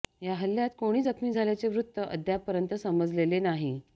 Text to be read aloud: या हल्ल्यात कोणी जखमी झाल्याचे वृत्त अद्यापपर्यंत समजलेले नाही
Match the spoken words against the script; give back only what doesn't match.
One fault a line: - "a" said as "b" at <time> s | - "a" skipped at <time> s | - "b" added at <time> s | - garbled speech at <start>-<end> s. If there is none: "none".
none